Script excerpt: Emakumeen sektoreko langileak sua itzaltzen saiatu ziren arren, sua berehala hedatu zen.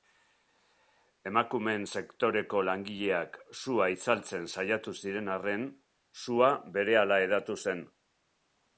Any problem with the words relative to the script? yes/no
no